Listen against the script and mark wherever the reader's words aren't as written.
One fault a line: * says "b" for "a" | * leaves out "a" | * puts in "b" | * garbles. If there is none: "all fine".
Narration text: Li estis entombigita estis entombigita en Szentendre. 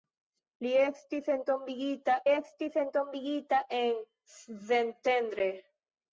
all fine